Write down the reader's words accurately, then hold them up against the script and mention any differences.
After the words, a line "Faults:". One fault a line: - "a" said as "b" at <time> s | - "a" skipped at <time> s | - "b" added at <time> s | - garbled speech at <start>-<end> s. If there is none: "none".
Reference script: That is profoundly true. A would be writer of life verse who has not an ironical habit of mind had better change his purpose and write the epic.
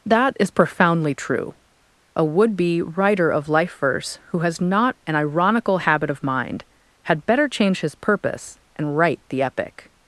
That is profoundly true. A would be writer of life verse who has not an ironical habit of mind had better change his purpose and write the epic.
Faults:
none